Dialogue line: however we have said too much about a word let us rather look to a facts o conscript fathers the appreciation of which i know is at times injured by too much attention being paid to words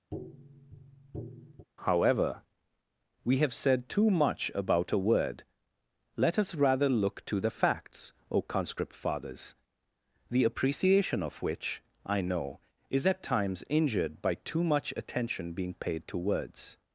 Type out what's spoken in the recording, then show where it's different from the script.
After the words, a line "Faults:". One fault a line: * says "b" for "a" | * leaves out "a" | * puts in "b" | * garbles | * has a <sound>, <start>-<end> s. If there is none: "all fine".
however we have said too much about a word let us rather look to the facts o conscript fathers the appreciation of which i know is at times injured by too much attention being paid to words
Faults:
* has a tap, 0.1-1.7 s
* says "the" for "a"